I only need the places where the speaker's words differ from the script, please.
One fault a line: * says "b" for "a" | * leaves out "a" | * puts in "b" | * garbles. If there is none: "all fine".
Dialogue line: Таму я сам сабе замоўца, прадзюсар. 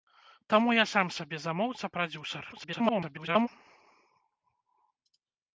* garbles